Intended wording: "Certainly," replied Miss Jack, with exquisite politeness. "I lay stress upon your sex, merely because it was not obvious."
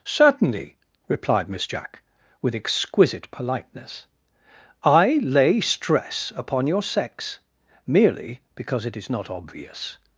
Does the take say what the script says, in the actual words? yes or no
no